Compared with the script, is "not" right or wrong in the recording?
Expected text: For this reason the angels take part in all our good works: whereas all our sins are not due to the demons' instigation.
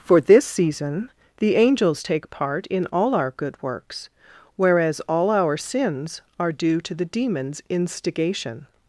wrong